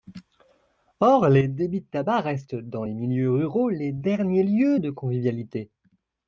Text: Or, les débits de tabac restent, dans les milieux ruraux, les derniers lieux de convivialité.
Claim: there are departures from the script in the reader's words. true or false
false